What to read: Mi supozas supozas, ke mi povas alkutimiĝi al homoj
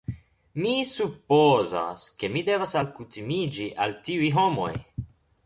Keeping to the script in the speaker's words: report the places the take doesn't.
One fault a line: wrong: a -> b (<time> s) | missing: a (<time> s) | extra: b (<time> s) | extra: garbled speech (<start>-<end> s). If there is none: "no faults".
missing: supozas (2.0 s)
wrong: povas -> devas (2.5 s)
extra: tiuj (4.1 s)